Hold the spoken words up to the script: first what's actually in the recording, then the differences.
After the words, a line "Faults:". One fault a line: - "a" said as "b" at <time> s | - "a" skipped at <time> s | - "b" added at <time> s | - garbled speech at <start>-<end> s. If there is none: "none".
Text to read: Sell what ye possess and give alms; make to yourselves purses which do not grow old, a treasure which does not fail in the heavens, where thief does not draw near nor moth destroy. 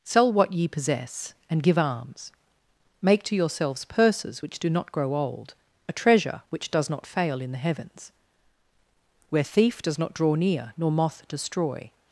Sell what ye possess and give alms; make to yourselves purses which do not grow old, a treasure which does not fail in the heavens, where thief does not draw near nor moth destroy.
Faults:
none